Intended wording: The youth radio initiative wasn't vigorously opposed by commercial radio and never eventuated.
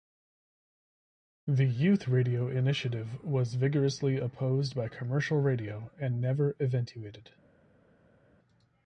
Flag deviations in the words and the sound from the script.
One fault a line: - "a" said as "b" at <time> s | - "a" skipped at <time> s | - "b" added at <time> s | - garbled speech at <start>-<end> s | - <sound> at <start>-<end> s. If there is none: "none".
- "wasn't" said as "was" at 3.2 s